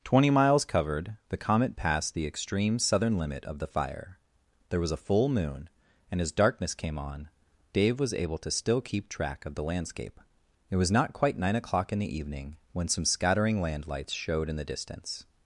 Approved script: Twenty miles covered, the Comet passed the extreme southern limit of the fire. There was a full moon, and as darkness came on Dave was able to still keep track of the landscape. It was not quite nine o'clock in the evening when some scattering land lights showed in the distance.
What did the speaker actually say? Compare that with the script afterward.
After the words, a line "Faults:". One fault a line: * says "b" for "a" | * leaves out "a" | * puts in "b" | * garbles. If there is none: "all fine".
Twenty miles covered, the Comet passed the extreme southern limit of the fire. There was a full moon, and as darkness came on Dave was able to still keep track of the landscape. It was not quite nine o'clock in the evening when some scattering land lights showed in the distance.
Faults:
all fine